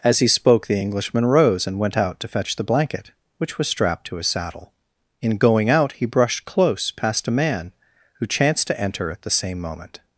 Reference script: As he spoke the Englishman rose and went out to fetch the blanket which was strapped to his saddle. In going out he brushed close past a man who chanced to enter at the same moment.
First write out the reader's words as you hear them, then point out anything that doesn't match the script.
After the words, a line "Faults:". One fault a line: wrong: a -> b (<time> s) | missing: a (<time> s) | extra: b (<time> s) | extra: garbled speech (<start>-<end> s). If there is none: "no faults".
As he spoke the Englishman rose and went out to fetch the blanket which was strapped to his saddle. In going out he brushed close past a man who chanced to enter at the same moment.
Faults:
no faults